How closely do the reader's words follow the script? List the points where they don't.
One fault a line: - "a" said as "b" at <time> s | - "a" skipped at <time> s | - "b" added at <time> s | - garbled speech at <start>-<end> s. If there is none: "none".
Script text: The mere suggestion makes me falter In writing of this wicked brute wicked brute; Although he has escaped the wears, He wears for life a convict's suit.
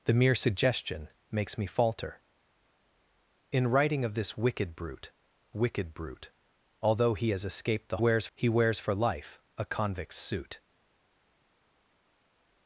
none